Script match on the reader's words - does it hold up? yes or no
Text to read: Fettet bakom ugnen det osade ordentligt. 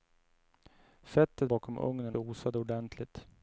yes